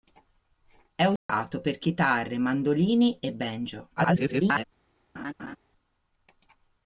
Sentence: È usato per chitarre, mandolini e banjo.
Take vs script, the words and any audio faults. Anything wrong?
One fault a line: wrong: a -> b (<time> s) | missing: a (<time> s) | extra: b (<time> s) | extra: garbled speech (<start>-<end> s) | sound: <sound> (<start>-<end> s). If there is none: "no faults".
sound: dropout (1.2-1.3 s)
extra: garbled speech (4.0-4.6 s)
sound: laugh (5.1-5.6 s)